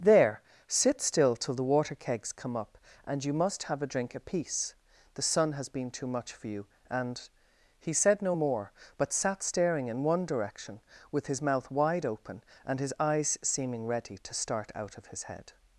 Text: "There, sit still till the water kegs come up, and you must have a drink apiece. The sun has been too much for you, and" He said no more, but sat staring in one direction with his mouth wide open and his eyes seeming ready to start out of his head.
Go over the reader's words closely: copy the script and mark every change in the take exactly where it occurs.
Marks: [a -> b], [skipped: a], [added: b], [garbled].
"There, sit still till the water kegs come up, and you must have a drink apiece. The sun has been too much for you, and" He said no more, but sat staring in one direction with his mouth wide open and his eyes seeming ready to start out of his head.